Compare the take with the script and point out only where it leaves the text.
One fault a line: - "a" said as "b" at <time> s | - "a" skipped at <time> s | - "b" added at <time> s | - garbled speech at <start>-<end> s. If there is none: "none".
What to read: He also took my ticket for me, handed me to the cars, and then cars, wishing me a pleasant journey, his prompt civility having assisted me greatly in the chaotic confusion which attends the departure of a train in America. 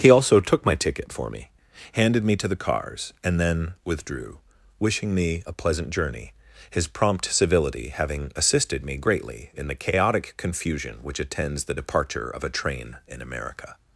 - "cars" said as "withdrew" at 3.9 s